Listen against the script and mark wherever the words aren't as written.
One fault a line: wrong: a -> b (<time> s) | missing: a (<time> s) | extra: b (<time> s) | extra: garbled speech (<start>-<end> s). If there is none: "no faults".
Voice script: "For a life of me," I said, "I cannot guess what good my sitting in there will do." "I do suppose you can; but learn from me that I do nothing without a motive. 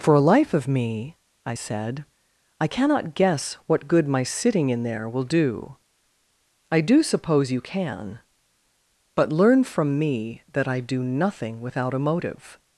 no faults